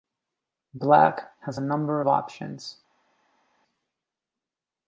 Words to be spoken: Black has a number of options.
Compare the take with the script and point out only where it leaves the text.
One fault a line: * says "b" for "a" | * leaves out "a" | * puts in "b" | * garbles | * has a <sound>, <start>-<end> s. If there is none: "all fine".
all fine